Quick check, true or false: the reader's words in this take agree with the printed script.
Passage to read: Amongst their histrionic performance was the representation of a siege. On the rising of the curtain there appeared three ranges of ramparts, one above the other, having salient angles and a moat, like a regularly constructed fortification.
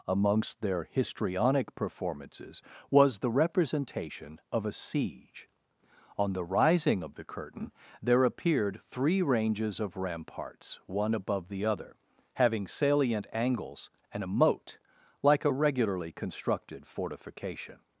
false